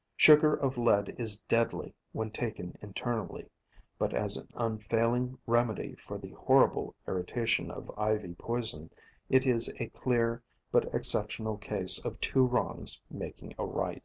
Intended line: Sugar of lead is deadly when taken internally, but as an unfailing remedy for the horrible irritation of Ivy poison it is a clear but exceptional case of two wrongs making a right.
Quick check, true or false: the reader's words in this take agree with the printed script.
true